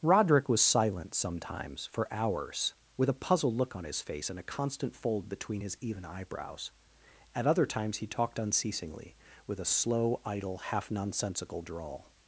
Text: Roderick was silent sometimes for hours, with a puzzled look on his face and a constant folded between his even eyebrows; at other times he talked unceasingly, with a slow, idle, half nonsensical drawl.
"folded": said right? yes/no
no